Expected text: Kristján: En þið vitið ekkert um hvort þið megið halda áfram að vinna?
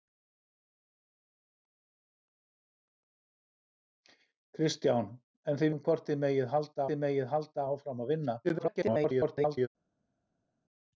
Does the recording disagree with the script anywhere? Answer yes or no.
yes